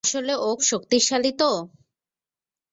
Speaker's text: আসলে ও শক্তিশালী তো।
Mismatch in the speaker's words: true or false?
false